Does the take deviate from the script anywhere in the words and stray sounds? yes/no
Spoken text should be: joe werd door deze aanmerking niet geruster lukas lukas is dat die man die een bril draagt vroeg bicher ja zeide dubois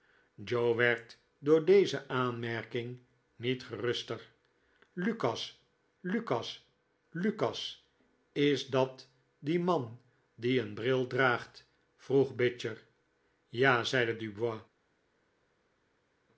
yes